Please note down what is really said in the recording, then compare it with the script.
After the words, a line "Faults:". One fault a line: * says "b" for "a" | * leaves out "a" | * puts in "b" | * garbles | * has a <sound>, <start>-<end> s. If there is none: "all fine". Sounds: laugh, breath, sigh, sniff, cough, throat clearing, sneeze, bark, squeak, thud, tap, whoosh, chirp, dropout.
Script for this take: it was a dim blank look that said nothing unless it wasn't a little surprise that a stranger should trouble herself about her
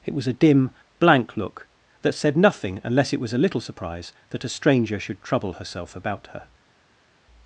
it was a dim blank look that said nothing unless it was a little surprise that a stranger should trouble herself about her
Faults:
* says "was" for "wasn't"